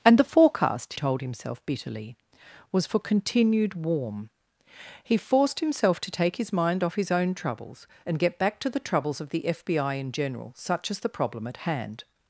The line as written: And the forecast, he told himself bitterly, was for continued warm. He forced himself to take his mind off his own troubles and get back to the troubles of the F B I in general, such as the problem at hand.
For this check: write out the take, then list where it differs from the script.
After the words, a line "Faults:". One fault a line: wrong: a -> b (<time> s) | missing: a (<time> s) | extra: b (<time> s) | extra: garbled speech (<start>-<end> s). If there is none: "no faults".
And the forecast, told himself bitterly, was for continued warm. He forced himself to take his mind off his own troubles and get back to the troubles of the F B I in general, such as the problem at hand.
Faults:
missing: he (0.9 s)